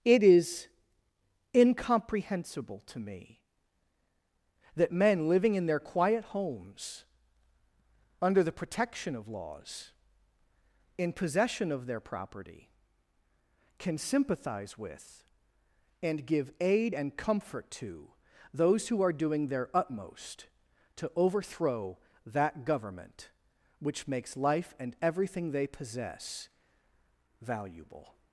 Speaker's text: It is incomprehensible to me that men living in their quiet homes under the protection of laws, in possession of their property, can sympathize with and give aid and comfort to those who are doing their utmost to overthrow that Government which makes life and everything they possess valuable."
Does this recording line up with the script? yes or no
yes